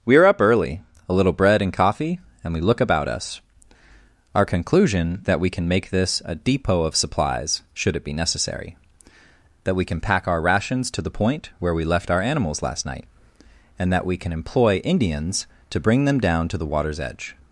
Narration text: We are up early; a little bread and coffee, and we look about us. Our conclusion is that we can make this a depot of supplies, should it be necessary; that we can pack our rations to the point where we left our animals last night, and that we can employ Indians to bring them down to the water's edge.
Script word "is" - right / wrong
wrong